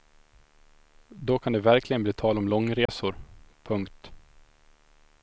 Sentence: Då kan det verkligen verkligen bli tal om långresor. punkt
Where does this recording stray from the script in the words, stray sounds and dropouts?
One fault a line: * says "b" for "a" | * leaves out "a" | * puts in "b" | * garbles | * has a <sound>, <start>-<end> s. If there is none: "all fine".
* leaves out "verkligen"
* has a dropout, 2.9-2.9 s